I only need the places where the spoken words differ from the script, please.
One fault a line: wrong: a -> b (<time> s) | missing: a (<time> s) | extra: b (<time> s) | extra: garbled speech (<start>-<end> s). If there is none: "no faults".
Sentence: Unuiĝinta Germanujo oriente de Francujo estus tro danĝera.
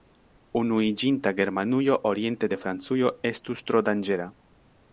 no faults